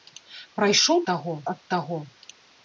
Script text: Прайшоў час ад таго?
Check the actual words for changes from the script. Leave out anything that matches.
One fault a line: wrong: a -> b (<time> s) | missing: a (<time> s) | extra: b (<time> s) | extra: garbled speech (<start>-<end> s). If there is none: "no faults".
wrong: час -> таго (1.1 s)